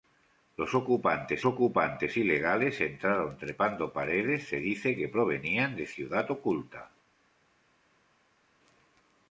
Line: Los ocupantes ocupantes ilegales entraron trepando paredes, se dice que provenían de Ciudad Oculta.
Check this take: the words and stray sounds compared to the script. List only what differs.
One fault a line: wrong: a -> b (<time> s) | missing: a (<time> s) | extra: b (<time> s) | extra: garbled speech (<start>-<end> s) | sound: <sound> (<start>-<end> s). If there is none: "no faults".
no faults